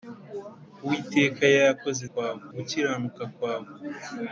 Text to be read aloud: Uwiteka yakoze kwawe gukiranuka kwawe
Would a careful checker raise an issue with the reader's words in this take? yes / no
no